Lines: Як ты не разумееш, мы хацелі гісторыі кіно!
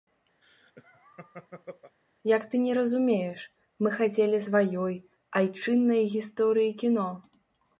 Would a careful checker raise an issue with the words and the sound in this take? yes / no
yes